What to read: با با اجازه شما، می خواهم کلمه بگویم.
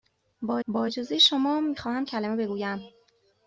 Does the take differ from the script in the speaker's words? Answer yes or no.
no